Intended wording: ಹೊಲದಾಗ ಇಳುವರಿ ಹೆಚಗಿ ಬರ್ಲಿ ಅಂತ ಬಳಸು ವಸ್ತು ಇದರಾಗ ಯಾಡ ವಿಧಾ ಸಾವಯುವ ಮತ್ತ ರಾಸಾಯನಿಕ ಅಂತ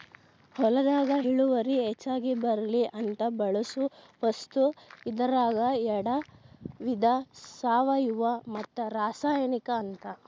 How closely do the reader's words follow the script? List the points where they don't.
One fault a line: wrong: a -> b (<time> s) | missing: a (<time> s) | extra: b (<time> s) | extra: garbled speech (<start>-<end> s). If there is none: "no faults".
no faults